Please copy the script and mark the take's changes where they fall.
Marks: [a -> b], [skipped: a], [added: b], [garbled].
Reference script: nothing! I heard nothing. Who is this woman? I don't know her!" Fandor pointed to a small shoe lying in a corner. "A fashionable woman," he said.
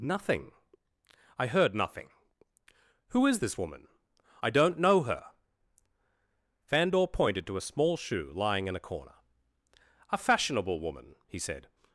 nothing! I heard nothing. Who is this woman? I don't know her!" Fandor pointed to a small shoe lying in a corner. "A fashionable woman," he said.